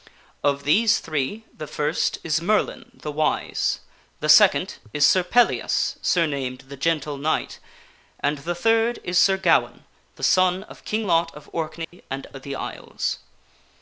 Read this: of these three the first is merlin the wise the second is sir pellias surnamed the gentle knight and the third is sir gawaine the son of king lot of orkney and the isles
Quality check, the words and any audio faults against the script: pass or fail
fail